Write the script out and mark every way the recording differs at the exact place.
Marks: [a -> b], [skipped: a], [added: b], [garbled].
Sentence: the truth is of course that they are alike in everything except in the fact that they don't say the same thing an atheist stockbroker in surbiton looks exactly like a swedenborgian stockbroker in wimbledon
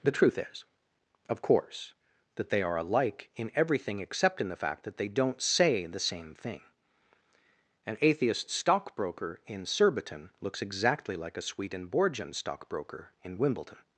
the truth is of course that they are alike in everything except in the fact that they don't say the same thing an atheist stockbroker in surbiton looks exactly like a swedenborgian stockbroker in wimbledon